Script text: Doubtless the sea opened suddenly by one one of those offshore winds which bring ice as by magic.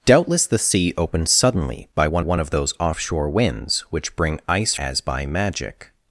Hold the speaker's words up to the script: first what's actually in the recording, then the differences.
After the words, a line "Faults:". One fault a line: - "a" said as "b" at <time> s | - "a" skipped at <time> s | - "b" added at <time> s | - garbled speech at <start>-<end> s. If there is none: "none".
Doubtless the sea opened suddenly by one one of those offshore winds which bring ice as by magic.
Faults:
none